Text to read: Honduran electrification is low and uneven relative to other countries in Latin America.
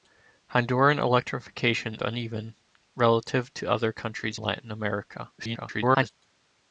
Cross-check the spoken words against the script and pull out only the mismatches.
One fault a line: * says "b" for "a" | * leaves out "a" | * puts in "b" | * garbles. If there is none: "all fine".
* leaves out "is low and"
* leaves out "in"
* garbles